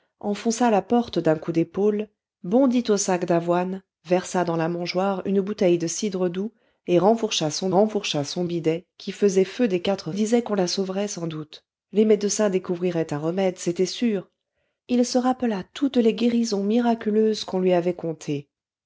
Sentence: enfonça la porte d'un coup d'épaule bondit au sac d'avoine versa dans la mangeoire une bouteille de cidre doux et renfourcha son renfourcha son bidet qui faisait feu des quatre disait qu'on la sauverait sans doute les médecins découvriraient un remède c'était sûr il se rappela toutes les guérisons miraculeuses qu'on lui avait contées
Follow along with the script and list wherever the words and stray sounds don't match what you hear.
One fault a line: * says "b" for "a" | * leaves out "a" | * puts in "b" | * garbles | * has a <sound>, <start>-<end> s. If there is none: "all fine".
all fine